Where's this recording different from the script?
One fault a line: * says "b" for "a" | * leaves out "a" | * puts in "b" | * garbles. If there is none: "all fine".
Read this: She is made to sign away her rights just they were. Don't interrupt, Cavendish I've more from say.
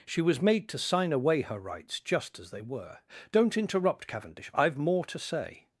* says "was" for "is"
* puts in "as"
* says "to" for "from"